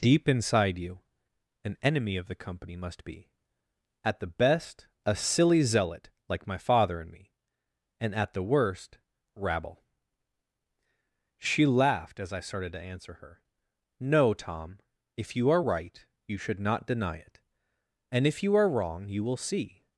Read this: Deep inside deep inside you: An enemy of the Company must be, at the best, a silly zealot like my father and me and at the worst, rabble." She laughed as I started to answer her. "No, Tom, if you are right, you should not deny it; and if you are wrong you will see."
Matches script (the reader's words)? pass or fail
fail